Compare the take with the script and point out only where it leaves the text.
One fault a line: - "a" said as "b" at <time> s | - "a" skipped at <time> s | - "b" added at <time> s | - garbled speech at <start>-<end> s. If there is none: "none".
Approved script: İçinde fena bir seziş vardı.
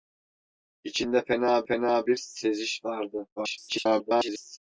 - "fena" added at 1.7 s
- garbled speech at 3.4-4.6 s